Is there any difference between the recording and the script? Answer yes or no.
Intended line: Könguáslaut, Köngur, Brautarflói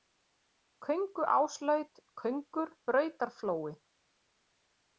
no